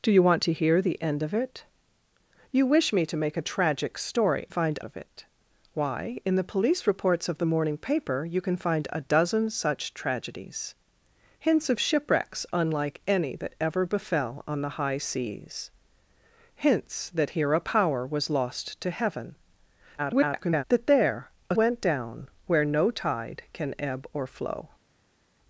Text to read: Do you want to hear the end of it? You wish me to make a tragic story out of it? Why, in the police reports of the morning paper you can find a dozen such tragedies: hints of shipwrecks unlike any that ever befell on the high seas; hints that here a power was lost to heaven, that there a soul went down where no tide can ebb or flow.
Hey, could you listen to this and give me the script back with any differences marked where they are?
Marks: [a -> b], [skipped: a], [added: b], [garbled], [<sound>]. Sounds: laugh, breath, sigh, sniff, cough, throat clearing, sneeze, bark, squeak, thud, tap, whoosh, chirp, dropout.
Do you want to hear the end of it? You wish me to make a tragic story [out -> find] of it? Why, in the police reports of the morning paper you can find a dozen such tragedies: hints of shipwrecks unlike any that ever befell on the high seas; hints that here a power was lost to heaven, [garbled] that there a [skipped: soul] went down where no tide can ebb or flow.